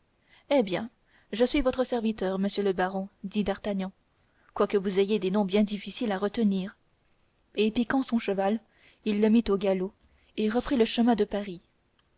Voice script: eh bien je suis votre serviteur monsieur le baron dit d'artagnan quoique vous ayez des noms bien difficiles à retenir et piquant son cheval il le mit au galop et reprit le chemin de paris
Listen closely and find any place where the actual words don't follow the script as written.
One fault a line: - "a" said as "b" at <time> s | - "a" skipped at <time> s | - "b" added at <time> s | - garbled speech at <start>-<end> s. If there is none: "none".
none